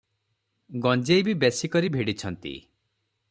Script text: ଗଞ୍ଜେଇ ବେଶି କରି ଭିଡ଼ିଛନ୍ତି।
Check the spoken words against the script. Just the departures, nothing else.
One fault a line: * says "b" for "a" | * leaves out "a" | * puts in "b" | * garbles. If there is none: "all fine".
* puts in "ବି"